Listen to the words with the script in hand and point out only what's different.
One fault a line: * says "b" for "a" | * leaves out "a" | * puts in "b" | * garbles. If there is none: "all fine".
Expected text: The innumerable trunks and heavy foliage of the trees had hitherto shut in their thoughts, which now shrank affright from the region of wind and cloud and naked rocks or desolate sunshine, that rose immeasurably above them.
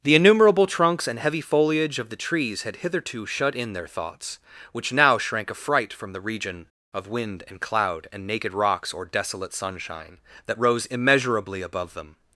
all fine